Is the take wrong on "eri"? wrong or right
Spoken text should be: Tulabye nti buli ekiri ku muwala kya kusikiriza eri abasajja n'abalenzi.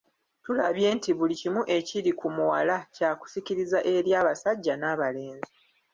right